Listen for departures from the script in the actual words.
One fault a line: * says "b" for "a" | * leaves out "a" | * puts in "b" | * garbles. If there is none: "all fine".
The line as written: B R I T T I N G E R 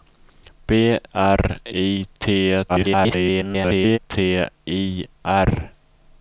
* garbles
* leaves out "N G E"